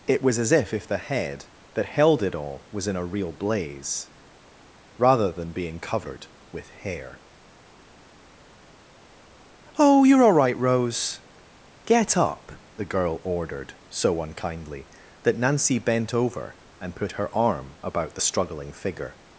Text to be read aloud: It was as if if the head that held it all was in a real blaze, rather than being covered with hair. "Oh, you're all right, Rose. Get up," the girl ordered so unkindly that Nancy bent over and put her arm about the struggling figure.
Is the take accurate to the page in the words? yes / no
yes